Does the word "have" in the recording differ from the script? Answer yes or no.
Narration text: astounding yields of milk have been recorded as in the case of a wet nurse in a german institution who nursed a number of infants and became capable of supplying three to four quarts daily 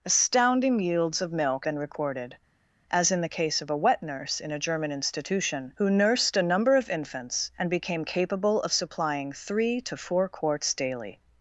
yes